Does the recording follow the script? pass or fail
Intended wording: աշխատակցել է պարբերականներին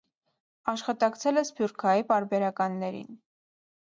fail